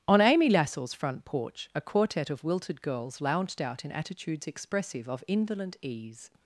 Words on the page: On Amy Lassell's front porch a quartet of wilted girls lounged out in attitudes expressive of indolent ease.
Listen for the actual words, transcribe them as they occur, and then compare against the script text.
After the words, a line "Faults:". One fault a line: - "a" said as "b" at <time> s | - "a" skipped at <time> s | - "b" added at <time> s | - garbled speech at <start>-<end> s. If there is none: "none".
On Amy Lassell's front porch a quartet of wilted girls lounged out in attitudes expressive of indolent ease.
Faults:
none